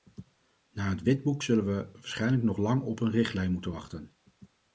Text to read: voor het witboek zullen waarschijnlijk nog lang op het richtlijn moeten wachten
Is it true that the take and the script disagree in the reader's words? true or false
true